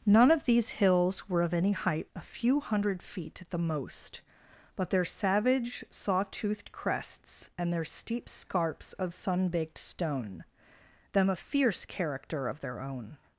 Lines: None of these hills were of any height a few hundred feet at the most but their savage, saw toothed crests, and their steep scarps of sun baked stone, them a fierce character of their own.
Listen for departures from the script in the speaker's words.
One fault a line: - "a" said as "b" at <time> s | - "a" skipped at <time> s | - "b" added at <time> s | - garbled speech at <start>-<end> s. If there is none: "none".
none